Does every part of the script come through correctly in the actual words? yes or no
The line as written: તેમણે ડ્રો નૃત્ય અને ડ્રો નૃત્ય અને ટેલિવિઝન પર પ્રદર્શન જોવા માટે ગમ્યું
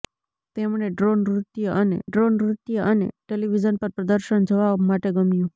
yes